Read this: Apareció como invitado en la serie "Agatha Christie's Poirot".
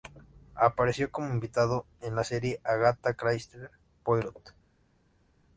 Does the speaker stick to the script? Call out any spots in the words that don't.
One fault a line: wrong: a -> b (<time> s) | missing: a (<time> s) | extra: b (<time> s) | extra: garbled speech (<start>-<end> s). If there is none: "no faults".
no faults